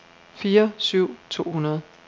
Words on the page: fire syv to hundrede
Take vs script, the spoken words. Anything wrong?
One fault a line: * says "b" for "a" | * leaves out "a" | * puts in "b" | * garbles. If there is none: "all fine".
all fine